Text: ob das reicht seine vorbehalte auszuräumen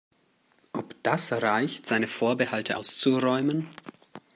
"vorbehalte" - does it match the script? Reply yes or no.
yes